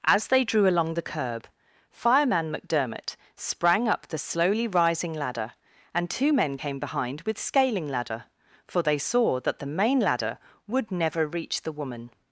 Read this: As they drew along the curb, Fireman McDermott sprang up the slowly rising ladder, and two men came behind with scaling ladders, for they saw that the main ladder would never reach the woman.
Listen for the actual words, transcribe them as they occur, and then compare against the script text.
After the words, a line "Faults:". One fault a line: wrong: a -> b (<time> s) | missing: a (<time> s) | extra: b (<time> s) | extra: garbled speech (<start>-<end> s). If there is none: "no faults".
As they drew along the curb, Fireman McDermott sprang up the slowly rising ladder, and two men came behind with scaling ladder, for they saw that the main ladder would never reach the woman.
Faults:
wrong: ladders -> ladder (7.9 s)